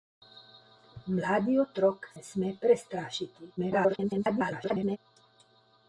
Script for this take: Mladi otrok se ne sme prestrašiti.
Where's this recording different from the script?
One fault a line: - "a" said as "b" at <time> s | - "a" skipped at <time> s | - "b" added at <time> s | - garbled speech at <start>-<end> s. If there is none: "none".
- "se" skipped at 2.1 s
- garbled speech at 3.6-5.0 s